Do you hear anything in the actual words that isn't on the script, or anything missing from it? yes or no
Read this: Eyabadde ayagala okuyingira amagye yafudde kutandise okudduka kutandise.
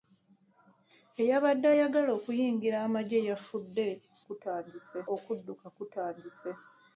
no